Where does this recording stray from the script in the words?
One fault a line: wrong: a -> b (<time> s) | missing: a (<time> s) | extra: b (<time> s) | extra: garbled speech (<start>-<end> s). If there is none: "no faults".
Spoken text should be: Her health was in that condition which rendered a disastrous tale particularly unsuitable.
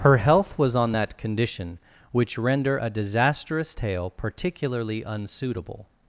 wrong: in -> on (0.8 s)
wrong: rendered -> render (2.4 s)